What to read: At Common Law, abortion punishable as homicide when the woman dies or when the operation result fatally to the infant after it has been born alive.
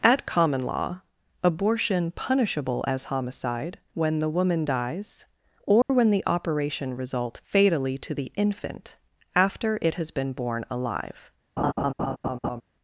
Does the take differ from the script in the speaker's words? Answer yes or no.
no